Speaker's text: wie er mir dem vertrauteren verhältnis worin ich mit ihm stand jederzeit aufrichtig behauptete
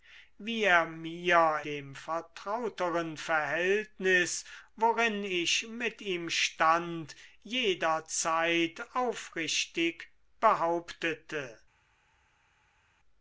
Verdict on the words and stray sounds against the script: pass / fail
pass